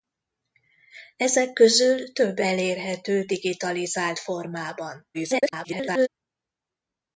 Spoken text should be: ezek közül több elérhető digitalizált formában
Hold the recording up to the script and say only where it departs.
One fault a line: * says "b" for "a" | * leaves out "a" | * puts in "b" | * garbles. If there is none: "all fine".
* garbles